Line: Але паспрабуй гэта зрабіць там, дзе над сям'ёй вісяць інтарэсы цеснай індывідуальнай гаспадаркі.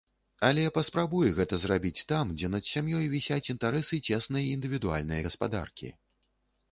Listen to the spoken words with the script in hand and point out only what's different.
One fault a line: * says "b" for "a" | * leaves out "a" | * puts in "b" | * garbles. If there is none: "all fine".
all fine